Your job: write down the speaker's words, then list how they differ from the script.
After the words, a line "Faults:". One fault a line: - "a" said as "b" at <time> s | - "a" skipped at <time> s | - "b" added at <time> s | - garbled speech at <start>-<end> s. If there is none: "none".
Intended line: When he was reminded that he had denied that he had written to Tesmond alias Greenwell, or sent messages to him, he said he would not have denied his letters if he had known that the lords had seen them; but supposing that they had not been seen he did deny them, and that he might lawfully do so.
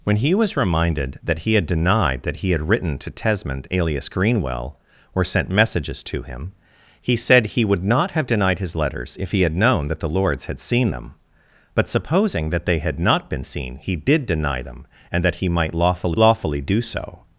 When he was reminded that he had denied that he had written to Tesmond alias Greenwell, or sent messages to him, he said he would not have denied his letters if he had known that the lords had seen them; but supposing that they had not been seen he did deny them, and that he might lawfully lawfully do so.
Faults:
- "lawfully" added at 16.1 s